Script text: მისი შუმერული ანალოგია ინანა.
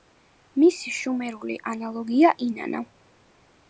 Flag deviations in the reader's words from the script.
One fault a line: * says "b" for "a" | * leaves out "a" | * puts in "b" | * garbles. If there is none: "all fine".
all fine